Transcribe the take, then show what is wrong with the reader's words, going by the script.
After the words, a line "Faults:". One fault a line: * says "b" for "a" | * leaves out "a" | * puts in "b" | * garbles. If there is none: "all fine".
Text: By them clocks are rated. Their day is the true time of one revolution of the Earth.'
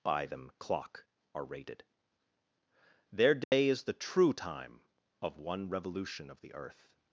By them clock are rated. Their day is the true time of one revolution of the Earth.'
Faults:
* says "clock" for "clocks"